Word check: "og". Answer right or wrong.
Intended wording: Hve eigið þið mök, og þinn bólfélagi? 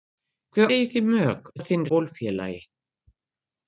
right